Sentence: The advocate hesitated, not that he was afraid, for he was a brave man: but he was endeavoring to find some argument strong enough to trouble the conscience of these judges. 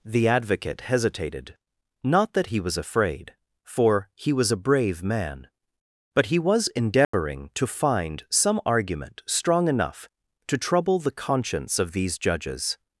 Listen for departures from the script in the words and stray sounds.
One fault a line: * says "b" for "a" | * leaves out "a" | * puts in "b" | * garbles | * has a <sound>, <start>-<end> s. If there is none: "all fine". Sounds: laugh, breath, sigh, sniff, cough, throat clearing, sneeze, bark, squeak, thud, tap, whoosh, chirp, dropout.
* has a dropout, 7.0-7.1 s